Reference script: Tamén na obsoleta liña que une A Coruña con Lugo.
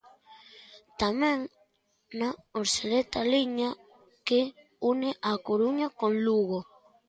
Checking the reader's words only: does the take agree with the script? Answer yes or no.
yes